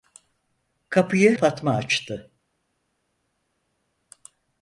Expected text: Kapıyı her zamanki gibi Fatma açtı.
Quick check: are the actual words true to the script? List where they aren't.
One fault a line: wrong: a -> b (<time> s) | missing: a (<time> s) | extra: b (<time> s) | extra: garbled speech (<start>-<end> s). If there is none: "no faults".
missing: her zamanki gibi (1.4 s)